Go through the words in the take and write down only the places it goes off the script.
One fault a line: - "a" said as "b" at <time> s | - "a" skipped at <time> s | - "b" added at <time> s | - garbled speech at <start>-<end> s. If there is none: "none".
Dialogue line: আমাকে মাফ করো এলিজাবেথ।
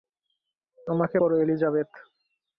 - "মাফ" skipped at 1.2 s